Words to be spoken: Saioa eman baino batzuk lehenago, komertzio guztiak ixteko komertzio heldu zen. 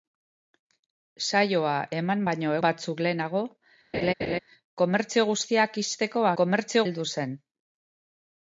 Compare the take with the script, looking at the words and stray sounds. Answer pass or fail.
fail